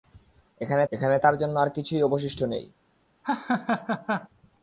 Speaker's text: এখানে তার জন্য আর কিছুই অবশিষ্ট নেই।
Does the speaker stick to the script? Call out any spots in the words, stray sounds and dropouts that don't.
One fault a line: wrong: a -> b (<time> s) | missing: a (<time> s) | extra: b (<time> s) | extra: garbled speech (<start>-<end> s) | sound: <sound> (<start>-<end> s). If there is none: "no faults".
extra: এখানে (0.9 s)
sound: laugh (3.2-4.3 s)